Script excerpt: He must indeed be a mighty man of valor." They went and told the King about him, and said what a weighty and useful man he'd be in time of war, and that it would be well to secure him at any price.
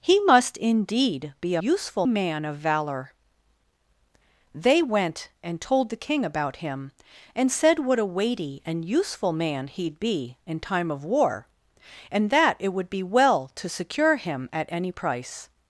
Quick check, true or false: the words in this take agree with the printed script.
false